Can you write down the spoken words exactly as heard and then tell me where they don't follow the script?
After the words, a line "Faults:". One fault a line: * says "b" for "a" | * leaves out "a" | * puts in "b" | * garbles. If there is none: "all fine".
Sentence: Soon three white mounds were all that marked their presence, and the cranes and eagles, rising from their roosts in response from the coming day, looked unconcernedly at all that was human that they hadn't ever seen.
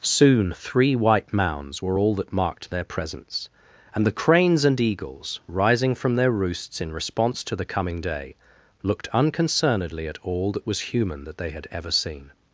Soon three white mounds were all that marked their presence, and the cranes and eagles, rising from their roosts in response to the coming day, looked unconcernedly at all that was human that they had ever seen.
Faults:
* says "to" for "from"
* says "had" for "hadn't"